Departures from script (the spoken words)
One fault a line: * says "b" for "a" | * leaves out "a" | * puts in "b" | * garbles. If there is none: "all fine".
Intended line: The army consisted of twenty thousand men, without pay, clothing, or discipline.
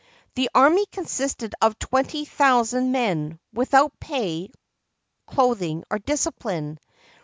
all fine